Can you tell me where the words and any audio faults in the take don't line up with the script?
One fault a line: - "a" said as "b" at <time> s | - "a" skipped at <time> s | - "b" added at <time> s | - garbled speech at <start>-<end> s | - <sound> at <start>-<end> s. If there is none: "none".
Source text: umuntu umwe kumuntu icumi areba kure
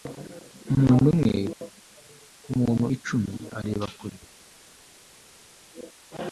none